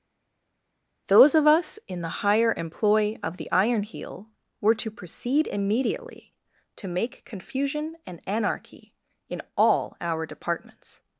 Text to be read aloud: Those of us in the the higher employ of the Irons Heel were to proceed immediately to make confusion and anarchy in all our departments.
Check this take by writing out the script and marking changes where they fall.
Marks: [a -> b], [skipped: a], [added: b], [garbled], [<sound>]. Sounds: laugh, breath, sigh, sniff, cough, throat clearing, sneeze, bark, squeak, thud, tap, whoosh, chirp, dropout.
Those of us in the [skipped: the] higher employ of the [Irons -> Iron] Heel were to proceed immediately to make confusion and anarchy in all our departments.